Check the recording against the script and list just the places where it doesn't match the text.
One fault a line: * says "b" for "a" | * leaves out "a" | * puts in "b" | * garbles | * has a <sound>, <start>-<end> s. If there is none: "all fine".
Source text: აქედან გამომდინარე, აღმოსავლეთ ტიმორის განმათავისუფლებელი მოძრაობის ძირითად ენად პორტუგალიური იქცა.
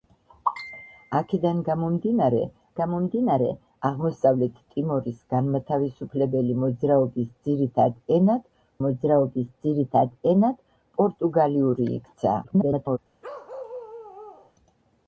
* puts in "გამომდინარე"
* puts in "მოძრაობის ძირითად ენად"
* garbles
* has a bark, 13.2-14.5 s